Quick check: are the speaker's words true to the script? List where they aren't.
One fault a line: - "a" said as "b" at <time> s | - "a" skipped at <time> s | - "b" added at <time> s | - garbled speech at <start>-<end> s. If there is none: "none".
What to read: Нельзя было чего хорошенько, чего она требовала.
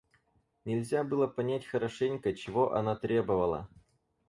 - "чего" said as "понять" at 1.3 s